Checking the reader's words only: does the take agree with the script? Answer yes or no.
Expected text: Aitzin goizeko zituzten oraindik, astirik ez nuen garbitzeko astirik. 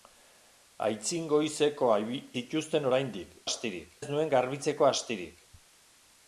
yes